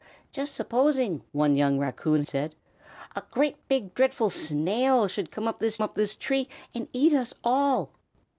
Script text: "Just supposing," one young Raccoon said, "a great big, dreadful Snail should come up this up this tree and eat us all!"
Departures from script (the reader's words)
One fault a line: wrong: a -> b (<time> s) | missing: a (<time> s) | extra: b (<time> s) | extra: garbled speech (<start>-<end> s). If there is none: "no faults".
no faults